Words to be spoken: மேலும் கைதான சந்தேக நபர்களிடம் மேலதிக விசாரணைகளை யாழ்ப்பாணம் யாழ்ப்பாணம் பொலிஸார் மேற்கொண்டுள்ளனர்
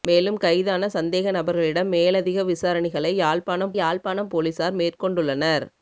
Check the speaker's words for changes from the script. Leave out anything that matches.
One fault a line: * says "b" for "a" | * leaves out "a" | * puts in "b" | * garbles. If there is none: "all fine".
all fine